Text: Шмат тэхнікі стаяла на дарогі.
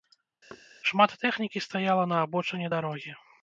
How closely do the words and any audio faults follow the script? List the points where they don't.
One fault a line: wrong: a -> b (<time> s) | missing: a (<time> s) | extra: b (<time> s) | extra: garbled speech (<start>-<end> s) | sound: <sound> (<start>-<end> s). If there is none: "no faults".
sound: thud (0.5-0.7 s)
extra: абочыне (2.3 s)